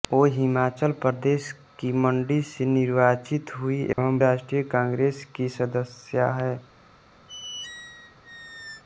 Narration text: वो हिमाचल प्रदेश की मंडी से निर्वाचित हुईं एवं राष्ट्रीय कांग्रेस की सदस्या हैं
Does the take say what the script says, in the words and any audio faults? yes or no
no